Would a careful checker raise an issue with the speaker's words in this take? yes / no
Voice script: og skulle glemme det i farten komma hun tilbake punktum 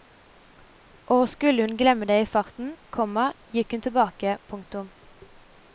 yes